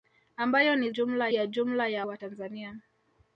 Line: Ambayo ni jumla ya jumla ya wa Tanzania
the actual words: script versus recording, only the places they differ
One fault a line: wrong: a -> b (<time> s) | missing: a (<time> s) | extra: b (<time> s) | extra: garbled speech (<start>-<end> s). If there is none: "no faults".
no faults